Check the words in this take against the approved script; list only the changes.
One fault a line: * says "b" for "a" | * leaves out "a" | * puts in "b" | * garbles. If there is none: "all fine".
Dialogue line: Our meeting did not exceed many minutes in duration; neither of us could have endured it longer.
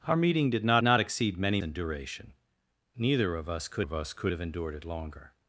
* puts in "not"
* leaves out "minutes"
* puts in "of us could"